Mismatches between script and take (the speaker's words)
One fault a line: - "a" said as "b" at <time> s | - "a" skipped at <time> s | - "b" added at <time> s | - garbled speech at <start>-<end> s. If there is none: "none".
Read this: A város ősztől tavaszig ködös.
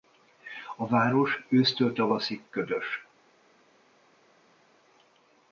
none